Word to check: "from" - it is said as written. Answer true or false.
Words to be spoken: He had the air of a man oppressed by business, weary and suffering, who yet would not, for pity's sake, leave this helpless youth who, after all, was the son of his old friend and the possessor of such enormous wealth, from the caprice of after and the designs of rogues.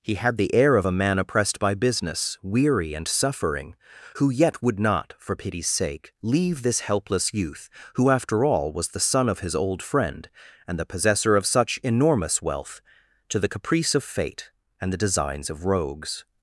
false